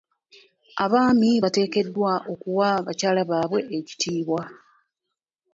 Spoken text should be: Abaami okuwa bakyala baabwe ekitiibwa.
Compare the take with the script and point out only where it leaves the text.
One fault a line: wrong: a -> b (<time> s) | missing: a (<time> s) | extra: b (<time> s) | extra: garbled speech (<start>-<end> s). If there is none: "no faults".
extra: bateekeddwa (1.4 s)